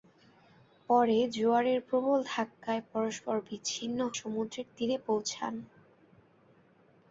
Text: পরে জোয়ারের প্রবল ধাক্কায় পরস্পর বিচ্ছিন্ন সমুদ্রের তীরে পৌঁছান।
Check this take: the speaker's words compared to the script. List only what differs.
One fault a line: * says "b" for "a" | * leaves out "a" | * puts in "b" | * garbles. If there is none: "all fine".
all fine